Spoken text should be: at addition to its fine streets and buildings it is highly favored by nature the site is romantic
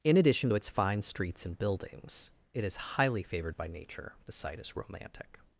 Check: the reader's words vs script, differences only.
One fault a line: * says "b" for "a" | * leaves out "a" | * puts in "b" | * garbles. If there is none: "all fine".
* says "in" for "at"